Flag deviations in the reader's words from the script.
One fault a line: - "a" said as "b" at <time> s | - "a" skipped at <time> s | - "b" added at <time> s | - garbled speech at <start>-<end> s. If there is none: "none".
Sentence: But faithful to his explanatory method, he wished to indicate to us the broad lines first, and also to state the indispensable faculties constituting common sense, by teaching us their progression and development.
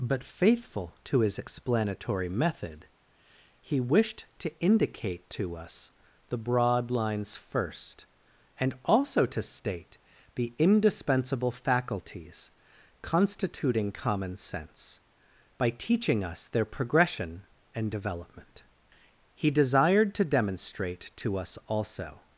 - "He desired to demonstrate to us also" added at 19.3 s